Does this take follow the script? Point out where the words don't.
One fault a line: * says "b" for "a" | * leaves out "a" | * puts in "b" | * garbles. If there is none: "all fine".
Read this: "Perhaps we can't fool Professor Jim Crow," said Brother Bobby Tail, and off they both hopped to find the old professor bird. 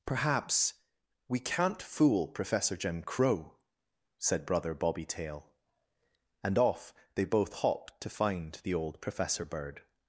all fine